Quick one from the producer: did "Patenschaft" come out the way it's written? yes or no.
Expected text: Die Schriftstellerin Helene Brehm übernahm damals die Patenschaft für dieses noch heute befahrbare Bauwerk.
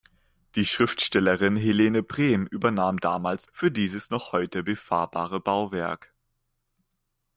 no